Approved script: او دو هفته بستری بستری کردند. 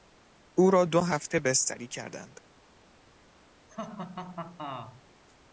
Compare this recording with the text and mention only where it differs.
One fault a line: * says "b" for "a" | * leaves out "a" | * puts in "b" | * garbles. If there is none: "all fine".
* puts in "را"
* leaves out "بستری"